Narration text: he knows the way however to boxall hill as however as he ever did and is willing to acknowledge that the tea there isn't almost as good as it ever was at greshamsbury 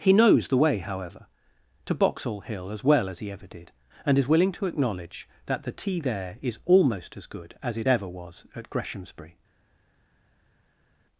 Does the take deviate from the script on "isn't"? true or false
true